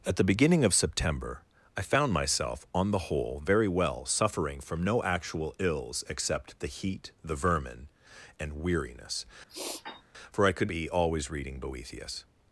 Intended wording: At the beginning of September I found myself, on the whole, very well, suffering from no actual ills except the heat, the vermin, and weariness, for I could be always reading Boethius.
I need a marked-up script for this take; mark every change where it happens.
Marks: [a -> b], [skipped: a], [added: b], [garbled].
At the beginning of September I found myself, on the whole, very well, suffering from no actual ills except the heat, the vermin, and weariness, for I could be always reading Boethius.